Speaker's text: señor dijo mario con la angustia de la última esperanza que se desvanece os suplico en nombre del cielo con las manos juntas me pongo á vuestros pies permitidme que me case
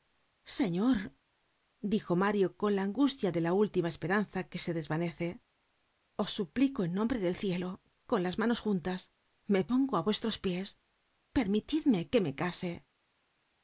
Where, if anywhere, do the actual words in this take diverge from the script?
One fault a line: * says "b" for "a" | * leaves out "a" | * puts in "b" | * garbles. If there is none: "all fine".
all fine